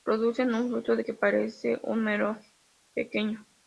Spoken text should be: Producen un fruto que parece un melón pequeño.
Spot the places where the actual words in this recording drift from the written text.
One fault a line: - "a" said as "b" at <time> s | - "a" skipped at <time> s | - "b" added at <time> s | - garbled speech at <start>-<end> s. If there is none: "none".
none